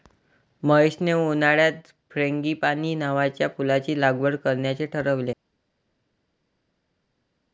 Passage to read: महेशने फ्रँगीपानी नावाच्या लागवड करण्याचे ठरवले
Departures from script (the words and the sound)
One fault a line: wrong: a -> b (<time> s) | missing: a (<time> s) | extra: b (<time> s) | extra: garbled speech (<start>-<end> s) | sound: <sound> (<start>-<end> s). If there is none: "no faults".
extra: उन्हाळ्यात (1.1 s)
extra: फुलाची (3.6 s)